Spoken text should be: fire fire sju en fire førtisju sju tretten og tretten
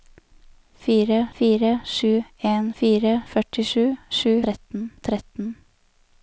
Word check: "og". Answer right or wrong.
right